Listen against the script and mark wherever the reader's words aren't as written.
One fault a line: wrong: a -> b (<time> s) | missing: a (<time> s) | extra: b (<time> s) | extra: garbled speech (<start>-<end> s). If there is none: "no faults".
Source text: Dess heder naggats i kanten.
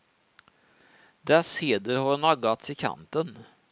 extra: har (2.0 s)